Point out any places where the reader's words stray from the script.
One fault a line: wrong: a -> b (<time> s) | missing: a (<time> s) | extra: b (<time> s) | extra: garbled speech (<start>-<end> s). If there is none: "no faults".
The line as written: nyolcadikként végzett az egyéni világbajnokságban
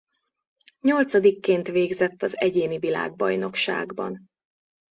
no faults